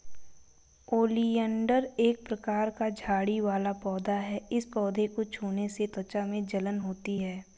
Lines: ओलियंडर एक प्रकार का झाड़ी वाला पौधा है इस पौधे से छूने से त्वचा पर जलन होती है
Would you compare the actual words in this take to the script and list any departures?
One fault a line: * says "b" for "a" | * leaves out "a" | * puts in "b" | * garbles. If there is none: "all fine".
* says "को" for "से"
* says "में" for "पर"